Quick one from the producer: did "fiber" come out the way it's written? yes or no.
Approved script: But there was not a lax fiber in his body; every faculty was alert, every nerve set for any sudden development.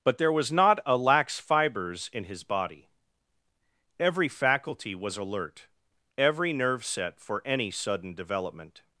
no